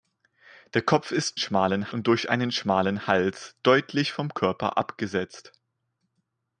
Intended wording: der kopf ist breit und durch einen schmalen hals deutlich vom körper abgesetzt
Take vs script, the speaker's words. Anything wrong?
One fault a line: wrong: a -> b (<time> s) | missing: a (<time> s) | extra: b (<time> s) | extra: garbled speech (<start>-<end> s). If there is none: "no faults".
wrong: breit -> schmalen (1.4 s)